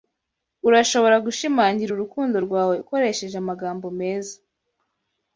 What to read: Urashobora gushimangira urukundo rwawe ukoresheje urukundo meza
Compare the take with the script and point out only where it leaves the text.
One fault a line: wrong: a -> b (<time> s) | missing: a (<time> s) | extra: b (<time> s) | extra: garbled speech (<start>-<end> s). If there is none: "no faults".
wrong: urukundo -> amagambo (3.4 s)